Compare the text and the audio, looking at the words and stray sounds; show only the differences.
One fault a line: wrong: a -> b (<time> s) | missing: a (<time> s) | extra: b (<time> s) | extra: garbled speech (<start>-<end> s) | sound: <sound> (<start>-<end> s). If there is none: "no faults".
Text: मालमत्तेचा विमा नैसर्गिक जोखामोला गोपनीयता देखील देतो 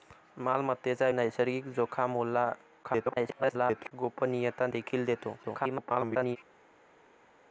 missing: विमा (1.1 s)
extra: garbled speech (2.8-3.9 s)
extra: garbled speech (5.4-6.4 s)